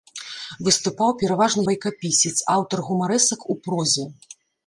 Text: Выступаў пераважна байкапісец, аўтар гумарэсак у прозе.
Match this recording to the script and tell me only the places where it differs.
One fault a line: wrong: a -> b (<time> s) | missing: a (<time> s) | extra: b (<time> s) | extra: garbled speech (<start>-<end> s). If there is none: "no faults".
no faults